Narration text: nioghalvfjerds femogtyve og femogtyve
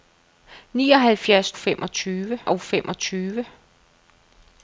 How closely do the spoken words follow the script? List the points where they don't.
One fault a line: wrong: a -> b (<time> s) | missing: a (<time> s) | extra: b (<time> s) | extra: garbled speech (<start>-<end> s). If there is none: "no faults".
no faults